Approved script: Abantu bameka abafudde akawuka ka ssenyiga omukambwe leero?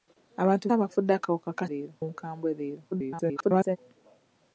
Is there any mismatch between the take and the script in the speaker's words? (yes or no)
yes